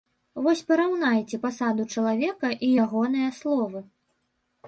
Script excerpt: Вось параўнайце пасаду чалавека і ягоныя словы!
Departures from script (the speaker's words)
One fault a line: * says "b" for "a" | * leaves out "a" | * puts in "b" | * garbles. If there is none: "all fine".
all fine